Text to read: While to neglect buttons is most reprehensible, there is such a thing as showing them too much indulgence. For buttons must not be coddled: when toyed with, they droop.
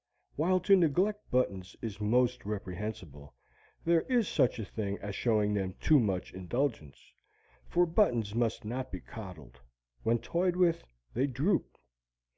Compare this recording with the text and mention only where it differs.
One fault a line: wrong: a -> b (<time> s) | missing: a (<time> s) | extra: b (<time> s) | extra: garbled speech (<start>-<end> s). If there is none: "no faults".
no faults